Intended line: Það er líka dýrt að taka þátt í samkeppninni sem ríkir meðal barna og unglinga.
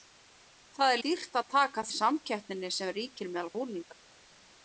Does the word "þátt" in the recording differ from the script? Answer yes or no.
yes